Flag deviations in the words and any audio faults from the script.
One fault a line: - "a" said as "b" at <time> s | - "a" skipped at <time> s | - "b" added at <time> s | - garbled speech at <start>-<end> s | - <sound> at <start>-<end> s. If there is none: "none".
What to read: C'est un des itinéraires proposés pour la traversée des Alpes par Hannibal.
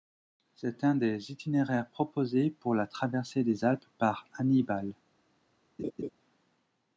- laugh at 5.8-6.1 s